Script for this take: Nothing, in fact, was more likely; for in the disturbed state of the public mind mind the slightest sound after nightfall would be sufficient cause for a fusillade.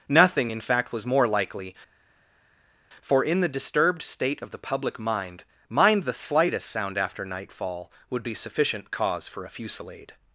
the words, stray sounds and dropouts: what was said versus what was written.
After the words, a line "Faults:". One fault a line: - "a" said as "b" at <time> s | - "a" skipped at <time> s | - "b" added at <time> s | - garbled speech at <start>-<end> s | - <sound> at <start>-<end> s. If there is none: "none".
Nothing, in fact, was more likely; for in the disturbed state of the public mind mind the slightest sound after nightfall would be sufficient cause for a fusillade.
Faults:
none